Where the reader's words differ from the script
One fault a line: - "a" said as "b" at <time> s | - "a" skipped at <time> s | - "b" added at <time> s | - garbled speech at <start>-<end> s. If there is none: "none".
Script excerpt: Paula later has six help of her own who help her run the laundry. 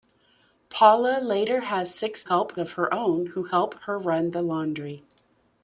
none